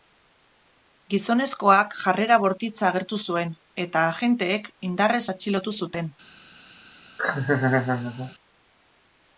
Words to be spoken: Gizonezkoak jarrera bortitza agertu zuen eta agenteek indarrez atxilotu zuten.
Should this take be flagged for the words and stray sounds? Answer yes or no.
yes